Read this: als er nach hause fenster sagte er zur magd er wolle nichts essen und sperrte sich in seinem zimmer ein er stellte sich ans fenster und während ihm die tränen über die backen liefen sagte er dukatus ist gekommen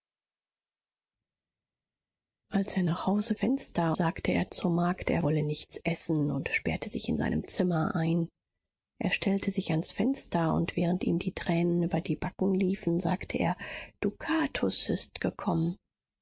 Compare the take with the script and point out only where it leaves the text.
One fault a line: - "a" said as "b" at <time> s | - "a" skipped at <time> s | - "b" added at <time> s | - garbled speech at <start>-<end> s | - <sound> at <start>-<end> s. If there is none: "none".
none